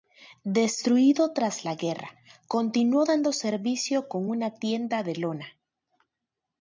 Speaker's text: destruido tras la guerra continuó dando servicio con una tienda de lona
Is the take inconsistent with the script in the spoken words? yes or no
no